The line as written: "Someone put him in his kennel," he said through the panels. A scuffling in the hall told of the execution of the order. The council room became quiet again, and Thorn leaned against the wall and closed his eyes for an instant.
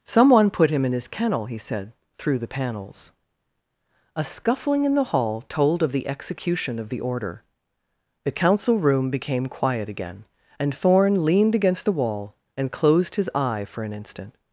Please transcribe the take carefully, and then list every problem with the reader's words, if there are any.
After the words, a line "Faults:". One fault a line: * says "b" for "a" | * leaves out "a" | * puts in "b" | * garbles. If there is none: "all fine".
"Someone put him in his kennel," he said through the panels. A scuffling in the hall told of the execution of the order. The council room became quiet again, and Thorn leaned against the wall and closed his eye for an instant.
Faults:
* says "eye" for "eyes"